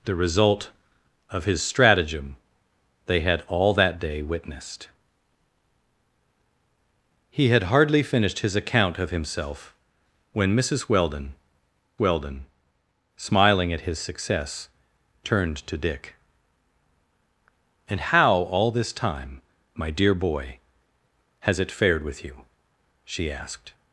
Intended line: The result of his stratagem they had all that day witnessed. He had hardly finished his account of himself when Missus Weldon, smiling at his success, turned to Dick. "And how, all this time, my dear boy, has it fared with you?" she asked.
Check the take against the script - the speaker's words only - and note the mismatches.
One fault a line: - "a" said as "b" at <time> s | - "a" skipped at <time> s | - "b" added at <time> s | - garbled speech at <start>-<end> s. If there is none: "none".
- "Weldon" added at 12.0 s